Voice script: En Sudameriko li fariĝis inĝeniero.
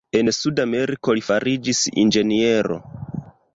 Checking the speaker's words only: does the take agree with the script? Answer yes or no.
yes